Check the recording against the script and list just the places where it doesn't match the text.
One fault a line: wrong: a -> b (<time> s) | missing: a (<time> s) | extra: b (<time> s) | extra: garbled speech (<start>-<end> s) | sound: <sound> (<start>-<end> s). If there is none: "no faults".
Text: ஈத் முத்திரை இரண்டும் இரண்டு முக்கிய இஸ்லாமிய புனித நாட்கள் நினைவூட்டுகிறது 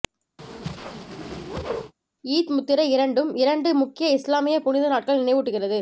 sound: whoosh (0.4-1.9 s)